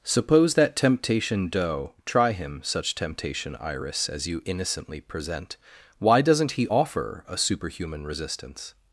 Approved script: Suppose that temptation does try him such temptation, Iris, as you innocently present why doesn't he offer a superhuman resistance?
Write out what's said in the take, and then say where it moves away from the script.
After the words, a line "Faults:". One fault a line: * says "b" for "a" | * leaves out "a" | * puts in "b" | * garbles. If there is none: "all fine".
Suppose that temptation doe try him such temptation, Iris, as you innocently present why doesn't he offer a superhuman resistance?
Faults:
* says "doe" for "does"